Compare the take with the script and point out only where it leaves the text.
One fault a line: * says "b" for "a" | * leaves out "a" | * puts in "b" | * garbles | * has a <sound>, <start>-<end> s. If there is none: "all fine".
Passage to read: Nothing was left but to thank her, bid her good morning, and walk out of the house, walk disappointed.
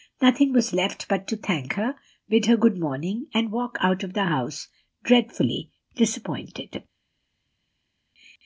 * says "dreadfully" for "walk"